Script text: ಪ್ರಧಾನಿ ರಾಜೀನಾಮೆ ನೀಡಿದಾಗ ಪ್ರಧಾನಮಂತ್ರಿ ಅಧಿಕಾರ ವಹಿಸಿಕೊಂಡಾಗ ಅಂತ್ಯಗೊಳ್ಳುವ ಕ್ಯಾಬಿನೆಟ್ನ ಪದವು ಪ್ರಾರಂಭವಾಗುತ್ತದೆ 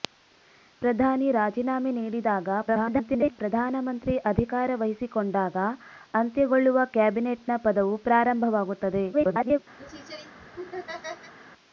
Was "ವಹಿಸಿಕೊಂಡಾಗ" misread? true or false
false